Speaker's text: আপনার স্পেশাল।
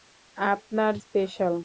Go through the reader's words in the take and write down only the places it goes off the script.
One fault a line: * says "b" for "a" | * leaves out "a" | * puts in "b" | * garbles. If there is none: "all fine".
all fine